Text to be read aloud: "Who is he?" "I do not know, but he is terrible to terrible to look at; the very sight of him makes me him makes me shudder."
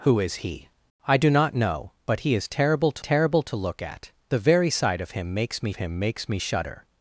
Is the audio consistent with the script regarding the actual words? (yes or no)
yes